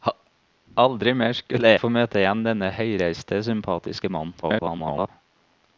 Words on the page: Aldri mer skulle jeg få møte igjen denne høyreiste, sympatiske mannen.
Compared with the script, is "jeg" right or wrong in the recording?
wrong